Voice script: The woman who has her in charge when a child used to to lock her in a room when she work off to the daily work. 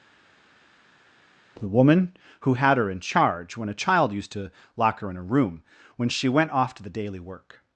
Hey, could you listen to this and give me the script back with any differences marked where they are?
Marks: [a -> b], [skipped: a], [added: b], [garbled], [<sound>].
The woman who [has -> had] her in charge when a child used to [skipped: to] lock her in a room when she [work -> went] off to the daily work.